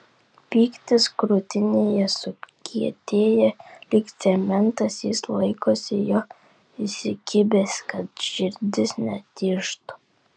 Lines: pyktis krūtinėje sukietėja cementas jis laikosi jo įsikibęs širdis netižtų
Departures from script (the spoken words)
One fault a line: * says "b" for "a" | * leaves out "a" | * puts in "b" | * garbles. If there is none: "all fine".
* puts in "lyg"
* puts in "kad"